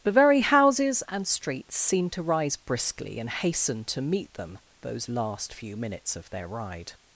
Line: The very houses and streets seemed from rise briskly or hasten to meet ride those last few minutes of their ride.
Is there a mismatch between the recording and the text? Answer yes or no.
yes